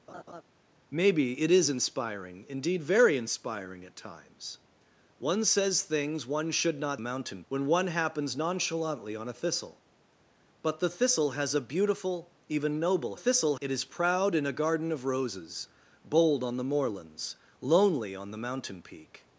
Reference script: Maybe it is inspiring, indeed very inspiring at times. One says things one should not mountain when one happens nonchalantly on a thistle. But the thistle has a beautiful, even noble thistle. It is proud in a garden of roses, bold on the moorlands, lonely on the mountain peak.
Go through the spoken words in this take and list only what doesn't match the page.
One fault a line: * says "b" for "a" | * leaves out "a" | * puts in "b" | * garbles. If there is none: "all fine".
all fine